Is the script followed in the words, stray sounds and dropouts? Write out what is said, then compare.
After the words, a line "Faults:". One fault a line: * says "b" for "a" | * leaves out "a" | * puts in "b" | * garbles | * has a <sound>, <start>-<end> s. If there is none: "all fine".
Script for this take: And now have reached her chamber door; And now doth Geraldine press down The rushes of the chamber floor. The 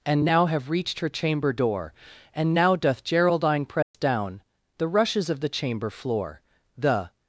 And now have reached her chamber door; And now doth Geraldine press down The rushes of the chamber floor. The
Faults:
* has a dropout, 3.8-3.9 s